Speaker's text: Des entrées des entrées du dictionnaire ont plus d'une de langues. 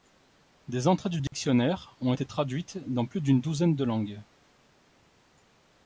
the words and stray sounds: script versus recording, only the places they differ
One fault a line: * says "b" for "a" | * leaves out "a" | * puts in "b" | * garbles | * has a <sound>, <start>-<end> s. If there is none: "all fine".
* leaves out "des entrées"
* has a dropout, 1.3-1.3 s
* puts in "été traduites dans"
* puts in "douzaine"